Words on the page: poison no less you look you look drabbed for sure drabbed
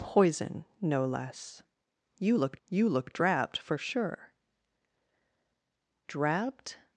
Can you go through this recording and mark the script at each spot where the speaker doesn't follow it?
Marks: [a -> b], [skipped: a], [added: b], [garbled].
poison no less you look you look drabbed for sure drabbed